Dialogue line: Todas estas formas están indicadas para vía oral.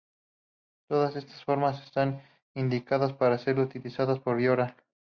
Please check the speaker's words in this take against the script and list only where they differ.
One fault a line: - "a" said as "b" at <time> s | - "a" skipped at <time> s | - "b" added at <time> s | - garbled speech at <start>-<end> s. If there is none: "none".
- "ser utilizadas por" added at 3.4 s